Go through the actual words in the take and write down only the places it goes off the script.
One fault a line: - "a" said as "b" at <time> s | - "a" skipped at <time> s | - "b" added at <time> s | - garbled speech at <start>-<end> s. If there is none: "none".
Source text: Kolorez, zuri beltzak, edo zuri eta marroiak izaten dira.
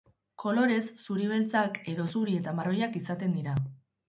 none